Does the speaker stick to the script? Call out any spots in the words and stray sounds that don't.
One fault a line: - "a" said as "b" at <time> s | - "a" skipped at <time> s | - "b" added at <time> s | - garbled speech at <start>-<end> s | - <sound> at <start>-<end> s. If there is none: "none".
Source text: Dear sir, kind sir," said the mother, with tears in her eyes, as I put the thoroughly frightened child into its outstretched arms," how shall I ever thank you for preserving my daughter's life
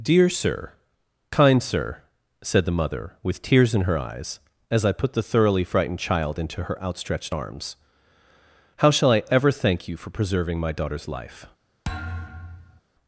- "its" said as "her" at 6.6 s
- thud at 11.8-12.8 s